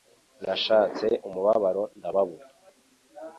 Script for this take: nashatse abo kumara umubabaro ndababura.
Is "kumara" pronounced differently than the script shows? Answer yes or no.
yes